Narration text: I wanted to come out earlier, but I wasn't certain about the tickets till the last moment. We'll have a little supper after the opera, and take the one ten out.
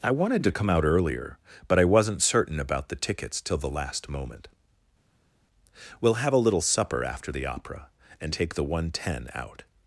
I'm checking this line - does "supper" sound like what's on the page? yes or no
yes